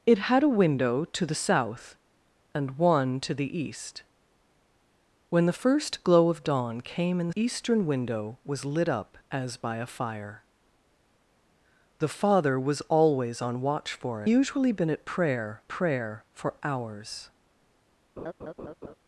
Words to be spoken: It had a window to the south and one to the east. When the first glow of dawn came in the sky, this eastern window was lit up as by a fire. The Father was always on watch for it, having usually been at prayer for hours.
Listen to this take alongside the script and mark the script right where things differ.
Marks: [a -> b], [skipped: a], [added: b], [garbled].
It had a window to the south and one to the east. When the first glow of dawn came in the [skipped: sky, this] eastern window was lit up as by a fire. The Father was always on watch for [skipped: it, having] usually been at prayer [added: prayer] for hours.